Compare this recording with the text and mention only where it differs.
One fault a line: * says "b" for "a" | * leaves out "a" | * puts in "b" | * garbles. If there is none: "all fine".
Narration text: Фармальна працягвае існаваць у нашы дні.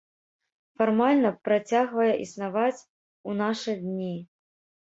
all fine